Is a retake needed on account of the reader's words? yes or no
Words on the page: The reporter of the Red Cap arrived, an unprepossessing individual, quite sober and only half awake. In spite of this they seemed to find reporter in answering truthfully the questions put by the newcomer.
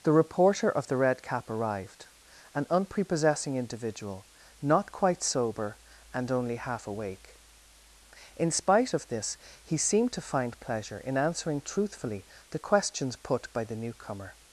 yes